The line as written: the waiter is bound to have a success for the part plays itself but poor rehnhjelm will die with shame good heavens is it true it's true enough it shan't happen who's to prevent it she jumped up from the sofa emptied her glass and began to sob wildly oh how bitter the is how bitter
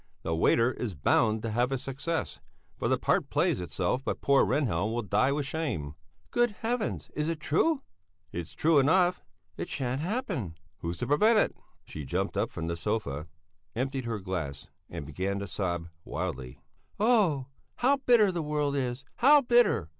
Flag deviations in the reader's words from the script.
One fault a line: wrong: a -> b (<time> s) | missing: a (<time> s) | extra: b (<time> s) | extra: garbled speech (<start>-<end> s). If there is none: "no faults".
extra: world (18.4 s)